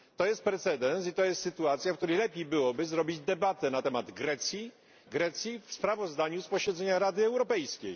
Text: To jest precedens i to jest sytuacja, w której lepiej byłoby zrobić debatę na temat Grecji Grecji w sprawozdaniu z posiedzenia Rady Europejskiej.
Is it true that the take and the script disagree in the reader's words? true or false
false